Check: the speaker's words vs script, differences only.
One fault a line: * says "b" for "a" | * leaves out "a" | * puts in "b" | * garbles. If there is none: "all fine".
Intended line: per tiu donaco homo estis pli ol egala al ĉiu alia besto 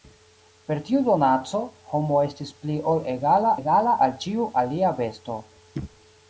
* puts in "egala"